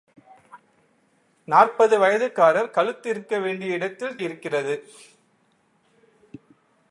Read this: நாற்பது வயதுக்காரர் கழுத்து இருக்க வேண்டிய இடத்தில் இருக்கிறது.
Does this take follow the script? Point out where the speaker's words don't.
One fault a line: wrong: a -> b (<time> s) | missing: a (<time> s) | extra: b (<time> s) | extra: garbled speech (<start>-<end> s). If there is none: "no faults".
no faults